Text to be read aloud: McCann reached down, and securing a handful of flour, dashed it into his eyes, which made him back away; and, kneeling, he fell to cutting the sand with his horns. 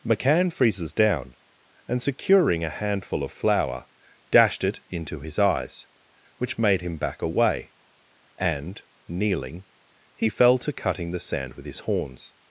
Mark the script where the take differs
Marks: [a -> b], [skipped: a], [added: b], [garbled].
McCann [reached -> freezes] down, and securing a handful of flour, dashed it into his eyes, which made him back away; and, kneeling, he fell to cutting the sand with his horns.